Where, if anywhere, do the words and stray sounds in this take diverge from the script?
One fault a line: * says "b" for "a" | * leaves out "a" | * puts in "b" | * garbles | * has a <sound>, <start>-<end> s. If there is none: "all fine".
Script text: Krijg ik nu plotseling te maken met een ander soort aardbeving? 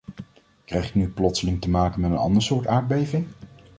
all fine